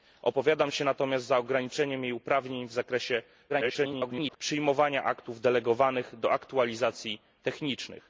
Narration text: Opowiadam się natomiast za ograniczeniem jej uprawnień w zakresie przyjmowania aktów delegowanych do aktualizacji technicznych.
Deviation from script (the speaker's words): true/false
true